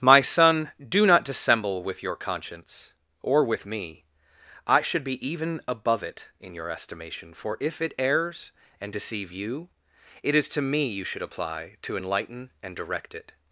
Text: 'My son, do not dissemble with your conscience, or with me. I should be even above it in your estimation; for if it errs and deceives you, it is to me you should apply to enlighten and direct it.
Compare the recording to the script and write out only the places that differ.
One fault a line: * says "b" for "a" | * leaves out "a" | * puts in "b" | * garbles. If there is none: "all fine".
* says "deceive" for "deceives"